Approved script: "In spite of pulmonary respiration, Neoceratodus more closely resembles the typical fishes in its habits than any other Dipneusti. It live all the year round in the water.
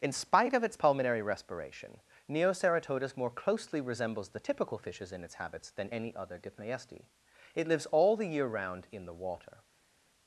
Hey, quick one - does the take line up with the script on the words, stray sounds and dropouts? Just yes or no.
no